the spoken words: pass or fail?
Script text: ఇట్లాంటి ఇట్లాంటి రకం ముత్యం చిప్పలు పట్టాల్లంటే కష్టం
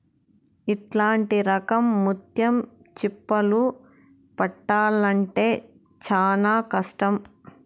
fail